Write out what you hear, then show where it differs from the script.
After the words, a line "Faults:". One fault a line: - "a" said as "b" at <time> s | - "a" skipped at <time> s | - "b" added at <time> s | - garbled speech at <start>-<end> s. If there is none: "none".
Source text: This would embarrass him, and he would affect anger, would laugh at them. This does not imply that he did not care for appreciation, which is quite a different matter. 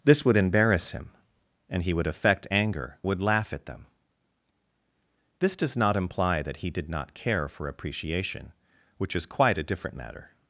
This would embarrass him, and he would affect anger, would laugh at them. This does not imply that he did not care for appreciation, which is quite a different matter.
Faults:
none